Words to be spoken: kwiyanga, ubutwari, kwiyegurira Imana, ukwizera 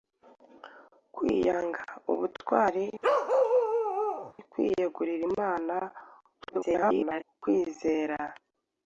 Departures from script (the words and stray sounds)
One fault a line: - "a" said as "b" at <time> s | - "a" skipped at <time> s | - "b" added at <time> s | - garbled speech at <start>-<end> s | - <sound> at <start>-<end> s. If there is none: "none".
- bark at 3.0-4.3 s
- garbled speech at 6.4-7.2 s